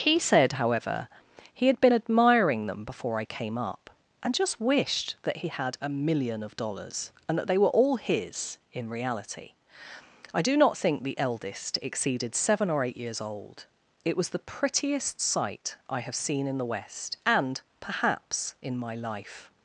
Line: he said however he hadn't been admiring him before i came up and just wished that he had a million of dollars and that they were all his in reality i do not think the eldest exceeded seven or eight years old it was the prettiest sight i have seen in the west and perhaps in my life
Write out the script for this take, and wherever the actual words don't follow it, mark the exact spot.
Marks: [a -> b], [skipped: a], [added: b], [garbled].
he said however he [hadn't -> had] been admiring [him -> them] before i came up and just wished that he had a million of dollars and that they were all his in reality i do not think the eldest exceeded seven or eight years old it was the prettiest sight i have seen in the west and perhaps in my life